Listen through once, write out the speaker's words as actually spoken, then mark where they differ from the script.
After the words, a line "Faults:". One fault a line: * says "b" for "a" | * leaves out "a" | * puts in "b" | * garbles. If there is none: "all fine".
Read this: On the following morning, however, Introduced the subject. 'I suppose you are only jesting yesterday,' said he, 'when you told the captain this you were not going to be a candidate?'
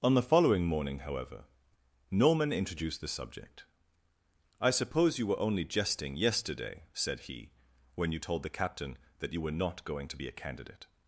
On the following morning, however, Norman introduced the subject. 'I suppose you were only jesting yesterday,' said he, 'when you told the captain that you were not going to be a candidate?'
Faults:
* puts in "Norman"
* says "were" for "are"
* says "that" for "this"